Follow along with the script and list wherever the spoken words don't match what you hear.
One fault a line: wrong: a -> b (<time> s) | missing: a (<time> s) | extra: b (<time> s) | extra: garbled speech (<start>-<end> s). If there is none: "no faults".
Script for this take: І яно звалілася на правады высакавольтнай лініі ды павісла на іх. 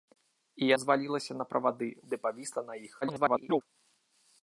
missing: яно (0.7 s)
missing: высакавольтнай лініі (1.9 s)
extra: garbled speech (3.0-3.6 s)